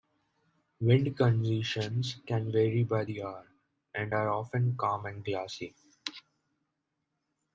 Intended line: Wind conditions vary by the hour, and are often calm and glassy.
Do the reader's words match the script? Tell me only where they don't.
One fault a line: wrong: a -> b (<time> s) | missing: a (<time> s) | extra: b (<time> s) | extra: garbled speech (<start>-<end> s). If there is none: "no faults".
extra: can (2.2 s)